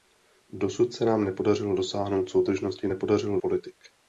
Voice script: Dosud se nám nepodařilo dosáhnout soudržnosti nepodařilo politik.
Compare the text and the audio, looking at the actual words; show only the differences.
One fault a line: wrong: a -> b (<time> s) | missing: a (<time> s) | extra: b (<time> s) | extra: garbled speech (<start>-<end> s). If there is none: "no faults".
no faults